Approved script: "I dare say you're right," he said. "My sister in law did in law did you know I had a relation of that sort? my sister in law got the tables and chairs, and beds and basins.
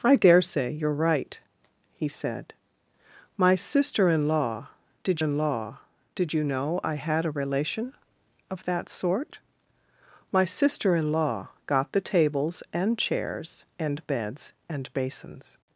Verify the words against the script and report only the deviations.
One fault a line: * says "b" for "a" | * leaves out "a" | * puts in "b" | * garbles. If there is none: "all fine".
all fine